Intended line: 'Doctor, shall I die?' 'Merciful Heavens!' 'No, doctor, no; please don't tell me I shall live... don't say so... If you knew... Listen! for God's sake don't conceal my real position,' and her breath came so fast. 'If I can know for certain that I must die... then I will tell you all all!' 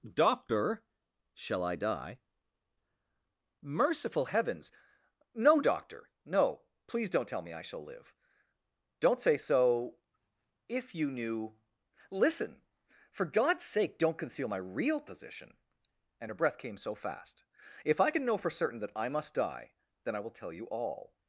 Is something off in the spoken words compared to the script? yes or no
yes